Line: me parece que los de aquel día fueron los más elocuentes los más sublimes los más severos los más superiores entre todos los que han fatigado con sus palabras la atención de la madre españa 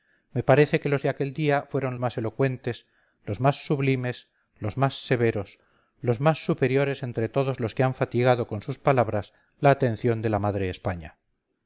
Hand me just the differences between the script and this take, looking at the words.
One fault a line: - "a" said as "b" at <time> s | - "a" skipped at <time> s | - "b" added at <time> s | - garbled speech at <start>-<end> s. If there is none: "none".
- "los" skipped at 1.9 s